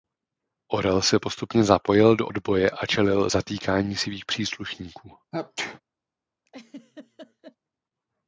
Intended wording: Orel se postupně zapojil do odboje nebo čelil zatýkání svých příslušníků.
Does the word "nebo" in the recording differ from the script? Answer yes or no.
yes